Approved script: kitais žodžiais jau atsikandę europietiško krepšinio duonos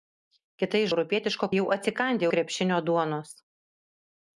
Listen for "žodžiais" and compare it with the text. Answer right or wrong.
wrong